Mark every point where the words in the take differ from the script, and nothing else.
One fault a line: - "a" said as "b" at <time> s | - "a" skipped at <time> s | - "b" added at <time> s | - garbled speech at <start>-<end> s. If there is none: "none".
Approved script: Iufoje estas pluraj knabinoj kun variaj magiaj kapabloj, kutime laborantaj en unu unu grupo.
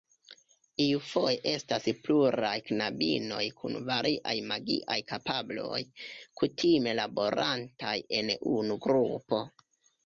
- "unu" skipped at 8.8 s